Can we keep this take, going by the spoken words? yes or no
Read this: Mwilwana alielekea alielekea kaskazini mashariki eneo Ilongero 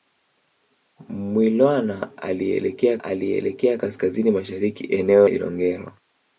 yes